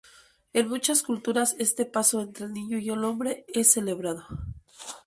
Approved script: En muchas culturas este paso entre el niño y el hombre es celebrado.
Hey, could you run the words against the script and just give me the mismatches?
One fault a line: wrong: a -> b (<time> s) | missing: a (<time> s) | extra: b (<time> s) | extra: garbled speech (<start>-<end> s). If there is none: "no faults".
no faults